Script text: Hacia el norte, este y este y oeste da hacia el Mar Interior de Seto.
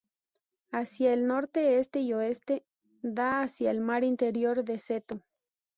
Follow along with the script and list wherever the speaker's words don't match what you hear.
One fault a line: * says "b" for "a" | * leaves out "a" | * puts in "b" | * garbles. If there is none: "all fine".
* leaves out "este y"